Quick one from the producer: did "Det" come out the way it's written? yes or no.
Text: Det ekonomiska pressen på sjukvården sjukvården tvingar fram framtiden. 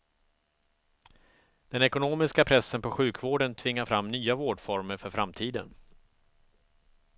no